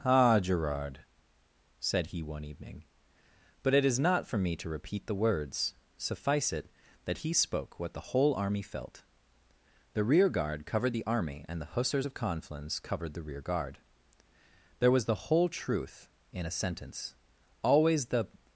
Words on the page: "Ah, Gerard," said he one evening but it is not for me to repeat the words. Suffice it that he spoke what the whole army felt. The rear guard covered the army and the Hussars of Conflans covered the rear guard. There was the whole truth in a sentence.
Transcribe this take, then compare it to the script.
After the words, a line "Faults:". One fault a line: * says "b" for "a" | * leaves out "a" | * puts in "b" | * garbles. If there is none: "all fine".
"Ah, Gerard," said he one evening but it is not for me to repeat the words. Suffice it that he spoke what the whole army felt. The rear guard covered the army and the Hussars of Conflans covered the rear guard. There was the whole truth in a sentence. Always the
Faults:
* puts in "Always the"